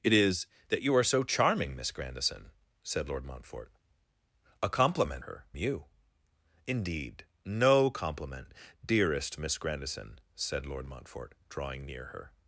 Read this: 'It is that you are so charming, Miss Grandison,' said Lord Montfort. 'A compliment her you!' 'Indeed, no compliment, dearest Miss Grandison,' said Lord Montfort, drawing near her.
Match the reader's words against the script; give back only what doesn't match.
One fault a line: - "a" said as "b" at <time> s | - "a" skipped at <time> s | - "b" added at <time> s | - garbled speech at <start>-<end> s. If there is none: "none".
none